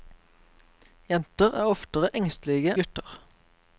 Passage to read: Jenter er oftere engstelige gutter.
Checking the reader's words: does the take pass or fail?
pass